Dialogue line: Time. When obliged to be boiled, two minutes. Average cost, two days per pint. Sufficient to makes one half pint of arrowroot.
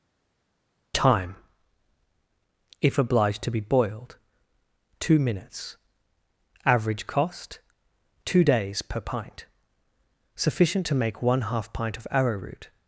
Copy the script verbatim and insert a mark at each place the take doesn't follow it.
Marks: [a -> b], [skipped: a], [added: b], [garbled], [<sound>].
Time. [When -> If] obliged to be boiled, two minutes. Average cost, two days per pint. Sufficient to [makes -> make] one half pint of arrowroot.